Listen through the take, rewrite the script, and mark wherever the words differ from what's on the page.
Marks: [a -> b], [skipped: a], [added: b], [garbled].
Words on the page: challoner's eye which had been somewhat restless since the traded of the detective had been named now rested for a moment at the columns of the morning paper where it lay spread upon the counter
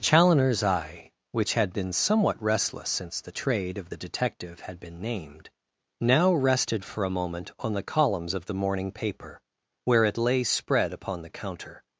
challoner's eye which had been somewhat restless since the [traded -> trade] of the detective had been named now rested for a moment [at -> on] the columns of the morning paper where it lay spread upon the counter